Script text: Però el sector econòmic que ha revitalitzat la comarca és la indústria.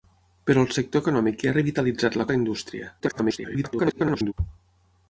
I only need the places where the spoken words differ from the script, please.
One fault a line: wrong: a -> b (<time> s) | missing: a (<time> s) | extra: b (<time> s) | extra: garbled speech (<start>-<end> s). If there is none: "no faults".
missing: comarca (2.3 s)
extra: garbled speech (3.0-4.3 s)